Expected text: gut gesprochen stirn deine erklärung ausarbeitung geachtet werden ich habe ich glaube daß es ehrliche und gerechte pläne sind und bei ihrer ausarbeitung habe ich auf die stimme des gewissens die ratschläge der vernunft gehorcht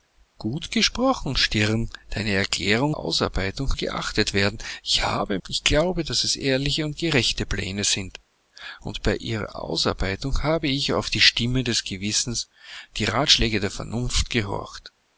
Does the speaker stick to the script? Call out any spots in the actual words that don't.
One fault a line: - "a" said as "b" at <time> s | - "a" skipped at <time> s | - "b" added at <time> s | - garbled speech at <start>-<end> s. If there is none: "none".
none